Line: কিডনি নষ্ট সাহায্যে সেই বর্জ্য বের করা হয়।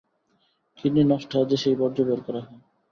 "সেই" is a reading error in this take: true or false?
false